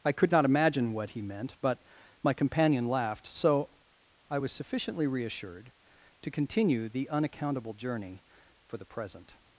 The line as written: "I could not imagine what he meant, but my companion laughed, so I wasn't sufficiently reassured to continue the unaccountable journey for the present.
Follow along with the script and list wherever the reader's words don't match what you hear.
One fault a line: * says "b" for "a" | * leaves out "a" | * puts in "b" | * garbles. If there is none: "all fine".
* says "was" for "wasn't"